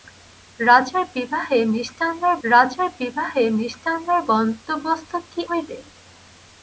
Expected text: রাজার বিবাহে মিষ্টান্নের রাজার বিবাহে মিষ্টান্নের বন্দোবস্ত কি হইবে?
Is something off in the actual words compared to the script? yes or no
no